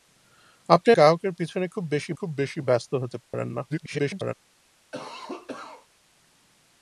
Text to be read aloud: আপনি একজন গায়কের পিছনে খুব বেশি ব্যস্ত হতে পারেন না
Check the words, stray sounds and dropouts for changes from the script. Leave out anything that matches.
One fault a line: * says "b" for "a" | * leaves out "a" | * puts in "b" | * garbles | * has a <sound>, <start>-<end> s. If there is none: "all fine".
* leaves out "একজন"
* puts in "খুব বেশি"
* has a dropout, 3.2-3.3 s
* garbles
* has a cough, 4.9-5.9 s